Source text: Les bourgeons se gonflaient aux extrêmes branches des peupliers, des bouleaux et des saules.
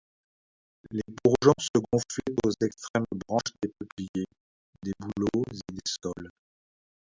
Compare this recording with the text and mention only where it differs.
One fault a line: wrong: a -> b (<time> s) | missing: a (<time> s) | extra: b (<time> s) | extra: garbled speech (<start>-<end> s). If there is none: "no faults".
no faults